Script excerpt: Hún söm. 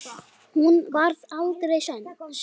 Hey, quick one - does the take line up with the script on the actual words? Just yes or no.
no